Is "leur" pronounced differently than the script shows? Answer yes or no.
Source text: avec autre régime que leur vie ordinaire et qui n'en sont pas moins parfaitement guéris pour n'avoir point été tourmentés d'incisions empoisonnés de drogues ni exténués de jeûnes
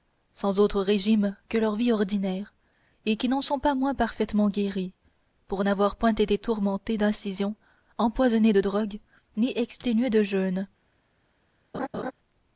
no